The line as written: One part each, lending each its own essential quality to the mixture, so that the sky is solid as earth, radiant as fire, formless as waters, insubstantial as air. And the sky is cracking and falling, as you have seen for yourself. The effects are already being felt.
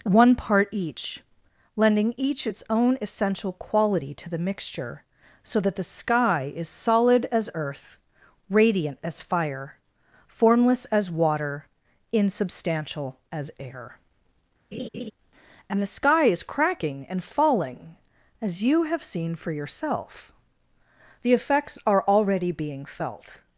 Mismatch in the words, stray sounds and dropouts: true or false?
true